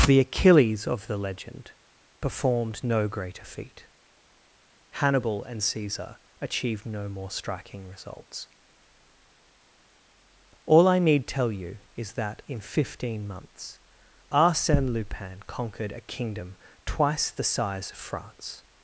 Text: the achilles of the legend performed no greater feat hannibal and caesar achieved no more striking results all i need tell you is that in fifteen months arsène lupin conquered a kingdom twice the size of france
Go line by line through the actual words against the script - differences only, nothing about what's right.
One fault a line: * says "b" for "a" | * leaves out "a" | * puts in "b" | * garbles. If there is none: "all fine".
all fine